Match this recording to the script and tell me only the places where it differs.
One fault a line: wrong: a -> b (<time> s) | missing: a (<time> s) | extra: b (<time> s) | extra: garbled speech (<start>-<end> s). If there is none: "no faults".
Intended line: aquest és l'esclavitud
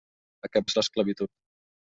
no faults